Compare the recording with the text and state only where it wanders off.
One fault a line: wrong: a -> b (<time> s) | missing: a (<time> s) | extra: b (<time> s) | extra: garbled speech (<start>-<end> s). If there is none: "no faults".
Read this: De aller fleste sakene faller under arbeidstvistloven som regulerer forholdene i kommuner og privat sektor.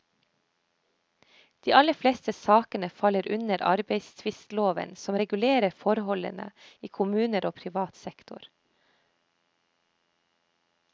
no faults